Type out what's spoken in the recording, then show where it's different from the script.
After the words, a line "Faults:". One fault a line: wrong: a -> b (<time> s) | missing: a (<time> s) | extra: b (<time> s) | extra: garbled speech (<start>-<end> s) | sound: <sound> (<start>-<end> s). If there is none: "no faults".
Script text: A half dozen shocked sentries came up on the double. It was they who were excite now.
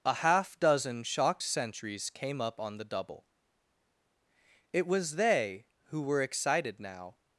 A half dozen shocked sentries came up on the double. It was they who were excited now.
Faults:
wrong: excite -> excited (6.2 s)